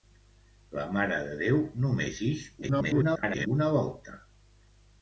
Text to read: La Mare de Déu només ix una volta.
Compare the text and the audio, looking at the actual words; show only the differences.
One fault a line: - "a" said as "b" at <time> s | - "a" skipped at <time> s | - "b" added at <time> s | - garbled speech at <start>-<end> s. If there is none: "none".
- garbled speech at 2.6-3.5 s